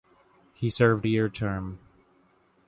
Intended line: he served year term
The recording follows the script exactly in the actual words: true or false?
true